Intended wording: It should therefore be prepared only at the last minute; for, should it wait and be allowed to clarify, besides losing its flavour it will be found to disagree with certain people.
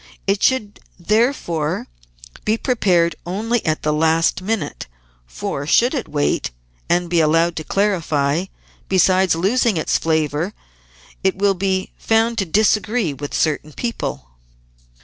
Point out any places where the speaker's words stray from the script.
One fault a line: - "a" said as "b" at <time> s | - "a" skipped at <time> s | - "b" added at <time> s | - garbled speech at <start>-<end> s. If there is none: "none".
none